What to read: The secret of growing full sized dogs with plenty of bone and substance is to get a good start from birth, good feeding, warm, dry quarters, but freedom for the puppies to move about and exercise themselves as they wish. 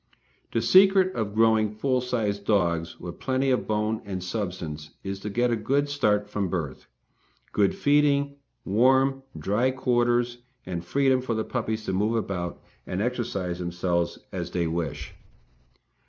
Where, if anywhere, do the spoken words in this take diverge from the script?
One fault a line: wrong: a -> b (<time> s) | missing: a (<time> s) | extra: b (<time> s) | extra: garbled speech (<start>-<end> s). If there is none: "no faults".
wrong: but -> and (10.7 s)